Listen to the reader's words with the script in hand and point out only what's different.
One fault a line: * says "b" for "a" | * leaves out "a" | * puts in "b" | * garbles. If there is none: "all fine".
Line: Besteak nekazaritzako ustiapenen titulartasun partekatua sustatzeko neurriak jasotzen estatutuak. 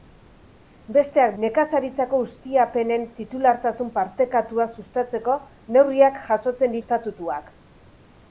all fine